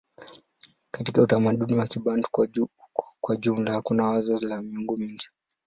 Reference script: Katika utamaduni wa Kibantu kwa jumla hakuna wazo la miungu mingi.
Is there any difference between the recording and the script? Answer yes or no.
no